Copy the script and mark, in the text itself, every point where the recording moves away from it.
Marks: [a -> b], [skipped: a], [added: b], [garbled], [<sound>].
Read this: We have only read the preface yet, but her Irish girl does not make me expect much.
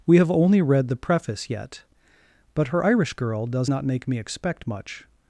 We have only read the preface yet, but her Irish girl does not make me expect much.